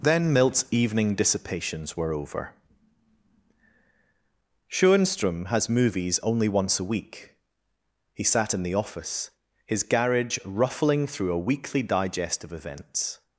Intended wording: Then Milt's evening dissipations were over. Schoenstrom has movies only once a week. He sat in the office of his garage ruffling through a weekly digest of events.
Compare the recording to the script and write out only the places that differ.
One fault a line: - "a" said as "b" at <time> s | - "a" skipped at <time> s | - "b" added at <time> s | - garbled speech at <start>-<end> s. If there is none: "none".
- "of" skipped at 9.3 s